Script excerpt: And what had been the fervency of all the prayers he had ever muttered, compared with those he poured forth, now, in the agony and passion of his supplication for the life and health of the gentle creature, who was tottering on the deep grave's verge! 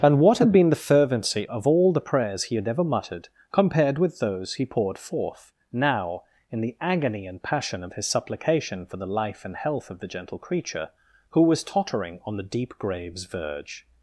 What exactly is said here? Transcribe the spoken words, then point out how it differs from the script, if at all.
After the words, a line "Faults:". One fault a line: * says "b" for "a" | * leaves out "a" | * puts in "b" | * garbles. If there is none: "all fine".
And what had been the fervency of all the prayers he had ever muttered, compared with those he poured forth, now, in the agony and passion of his supplication for the life and health of the gentle creature, who was tottering on the deep grave's verge!
Faults:
all fine